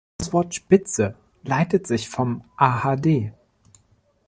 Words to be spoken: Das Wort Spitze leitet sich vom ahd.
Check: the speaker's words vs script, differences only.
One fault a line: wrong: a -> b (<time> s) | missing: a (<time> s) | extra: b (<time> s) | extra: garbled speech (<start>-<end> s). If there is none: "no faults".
no faults